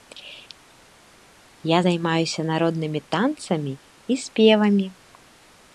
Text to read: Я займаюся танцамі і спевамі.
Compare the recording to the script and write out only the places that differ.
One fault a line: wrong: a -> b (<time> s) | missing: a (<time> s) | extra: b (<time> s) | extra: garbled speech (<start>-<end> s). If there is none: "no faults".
extra: народнымі (2.5 s)